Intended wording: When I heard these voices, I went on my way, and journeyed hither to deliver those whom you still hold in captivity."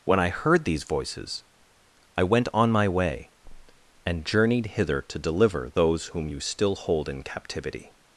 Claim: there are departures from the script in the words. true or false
false